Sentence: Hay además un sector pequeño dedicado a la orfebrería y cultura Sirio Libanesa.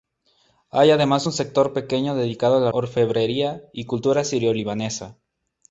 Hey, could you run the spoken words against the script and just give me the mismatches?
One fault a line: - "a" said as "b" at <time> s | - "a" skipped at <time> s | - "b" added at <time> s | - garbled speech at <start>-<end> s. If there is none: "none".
none